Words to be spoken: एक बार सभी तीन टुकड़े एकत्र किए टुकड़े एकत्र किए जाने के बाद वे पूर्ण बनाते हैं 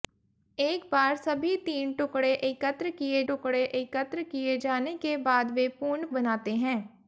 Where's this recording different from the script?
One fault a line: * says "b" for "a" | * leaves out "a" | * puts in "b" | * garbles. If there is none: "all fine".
all fine